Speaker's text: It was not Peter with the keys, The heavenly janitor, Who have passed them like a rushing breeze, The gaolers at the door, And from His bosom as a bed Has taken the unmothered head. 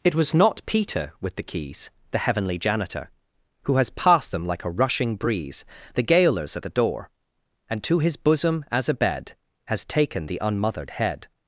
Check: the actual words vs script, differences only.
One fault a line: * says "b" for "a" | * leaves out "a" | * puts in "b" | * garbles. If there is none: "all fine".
* says "has" for "have"
* says "to" for "from"